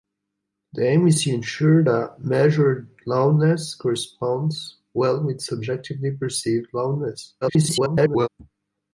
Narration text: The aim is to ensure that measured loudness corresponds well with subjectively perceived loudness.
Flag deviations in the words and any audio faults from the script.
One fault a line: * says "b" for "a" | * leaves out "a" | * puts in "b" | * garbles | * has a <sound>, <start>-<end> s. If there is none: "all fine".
* garbles